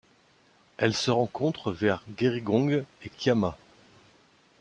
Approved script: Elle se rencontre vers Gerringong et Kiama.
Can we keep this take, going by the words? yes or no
yes